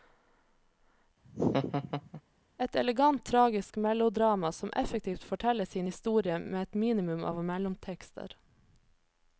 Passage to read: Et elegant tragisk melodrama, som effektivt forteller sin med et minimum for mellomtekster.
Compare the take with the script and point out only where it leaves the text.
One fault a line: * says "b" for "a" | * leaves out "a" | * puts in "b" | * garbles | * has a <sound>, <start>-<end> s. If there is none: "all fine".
* has a laugh, 1.2-2.2 s
* puts in "historie"
* says "av" for "for"